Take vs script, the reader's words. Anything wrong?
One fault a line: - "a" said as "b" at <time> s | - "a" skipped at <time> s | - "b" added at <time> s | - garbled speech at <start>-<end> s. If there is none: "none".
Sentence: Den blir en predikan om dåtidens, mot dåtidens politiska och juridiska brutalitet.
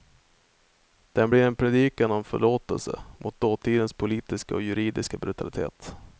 - "dåtidens" said as "förlåtelse" at 2.2 s